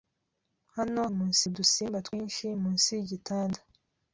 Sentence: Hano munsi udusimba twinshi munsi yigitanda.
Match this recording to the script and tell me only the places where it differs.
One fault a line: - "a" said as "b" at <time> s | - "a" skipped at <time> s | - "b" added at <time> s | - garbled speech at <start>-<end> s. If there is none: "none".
none